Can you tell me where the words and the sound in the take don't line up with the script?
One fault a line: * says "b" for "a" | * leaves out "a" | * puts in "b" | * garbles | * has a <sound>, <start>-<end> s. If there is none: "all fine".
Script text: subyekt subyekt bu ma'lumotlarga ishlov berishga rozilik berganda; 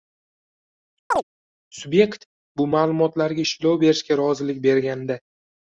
* has a chirp, 1.1-1.2 s
* leaves out "subyekt"